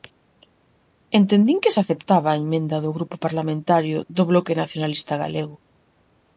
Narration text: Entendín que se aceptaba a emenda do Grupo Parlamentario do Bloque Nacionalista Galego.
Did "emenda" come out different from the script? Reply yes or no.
no